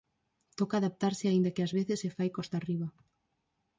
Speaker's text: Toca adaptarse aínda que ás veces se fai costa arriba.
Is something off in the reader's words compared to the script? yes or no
no